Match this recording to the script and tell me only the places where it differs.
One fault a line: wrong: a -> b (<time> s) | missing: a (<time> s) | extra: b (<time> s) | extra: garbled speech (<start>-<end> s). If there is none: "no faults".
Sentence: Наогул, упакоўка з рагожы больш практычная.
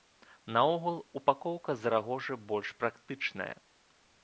no faults